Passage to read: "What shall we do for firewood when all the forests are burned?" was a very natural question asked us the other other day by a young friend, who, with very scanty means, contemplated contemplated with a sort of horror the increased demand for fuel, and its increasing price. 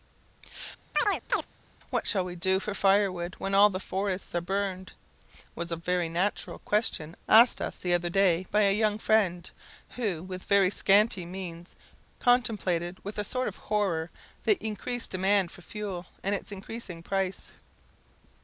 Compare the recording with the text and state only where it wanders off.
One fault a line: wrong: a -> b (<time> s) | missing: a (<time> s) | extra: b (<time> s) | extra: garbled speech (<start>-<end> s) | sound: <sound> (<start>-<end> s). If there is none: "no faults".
sound: chirp (0.9-1.5 s)
missing: other (8.1 s)
missing: contemplated (13.0 s)